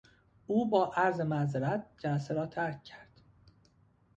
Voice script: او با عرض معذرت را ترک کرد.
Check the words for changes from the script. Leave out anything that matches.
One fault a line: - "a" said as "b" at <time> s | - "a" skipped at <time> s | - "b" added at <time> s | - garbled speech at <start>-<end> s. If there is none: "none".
- "جلسه" added at 2.0 s